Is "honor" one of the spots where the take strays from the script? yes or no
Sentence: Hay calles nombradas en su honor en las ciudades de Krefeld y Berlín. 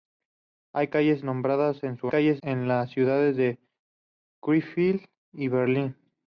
yes